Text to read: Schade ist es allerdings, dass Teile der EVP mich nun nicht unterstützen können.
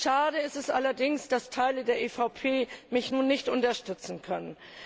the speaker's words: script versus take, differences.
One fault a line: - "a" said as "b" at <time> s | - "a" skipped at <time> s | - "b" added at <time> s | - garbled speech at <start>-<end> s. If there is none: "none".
none